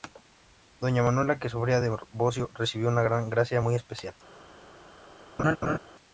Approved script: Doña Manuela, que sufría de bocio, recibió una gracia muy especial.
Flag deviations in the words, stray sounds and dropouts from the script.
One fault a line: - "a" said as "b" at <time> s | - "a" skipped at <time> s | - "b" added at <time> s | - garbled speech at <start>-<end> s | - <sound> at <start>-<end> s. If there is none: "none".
- laugh at 5.4-5.8 s